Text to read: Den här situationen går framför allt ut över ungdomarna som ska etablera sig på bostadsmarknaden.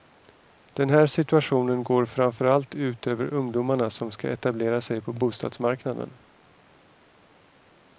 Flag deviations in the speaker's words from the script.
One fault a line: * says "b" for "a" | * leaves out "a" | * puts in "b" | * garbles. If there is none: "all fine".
all fine